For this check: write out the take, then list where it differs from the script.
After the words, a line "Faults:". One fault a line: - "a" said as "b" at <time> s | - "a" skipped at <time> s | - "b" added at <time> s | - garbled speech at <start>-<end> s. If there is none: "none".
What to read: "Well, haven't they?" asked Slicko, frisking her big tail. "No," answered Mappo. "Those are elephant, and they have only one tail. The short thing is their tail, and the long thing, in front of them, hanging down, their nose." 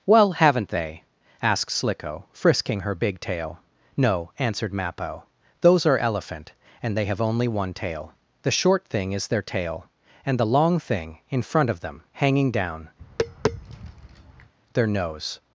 "Well, haven't they?" asked Slicko, frisking her big tail. "No," answered Mappo. "Those are elephant, and they have only one tail. The short thing is their tail, and the long thing, in front of them, hanging down, their nose."
Faults:
none